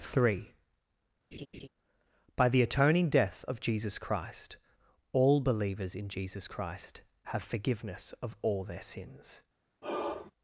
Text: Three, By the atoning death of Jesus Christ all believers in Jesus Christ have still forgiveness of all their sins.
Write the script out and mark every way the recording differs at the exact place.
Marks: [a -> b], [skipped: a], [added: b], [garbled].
Three, By the atoning death of Jesus Christ all believers in Jesus Christ have [skipped: still] forgiveness of all their sins.